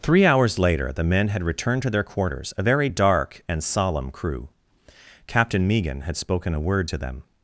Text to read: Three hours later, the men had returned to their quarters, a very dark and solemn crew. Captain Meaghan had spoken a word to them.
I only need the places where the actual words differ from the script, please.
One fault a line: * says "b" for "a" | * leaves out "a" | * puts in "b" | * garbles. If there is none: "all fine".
all fine